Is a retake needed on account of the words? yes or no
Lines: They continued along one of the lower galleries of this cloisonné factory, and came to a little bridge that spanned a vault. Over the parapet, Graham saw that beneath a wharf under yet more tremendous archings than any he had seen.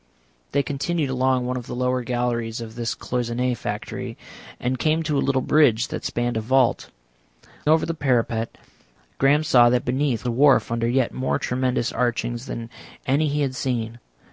no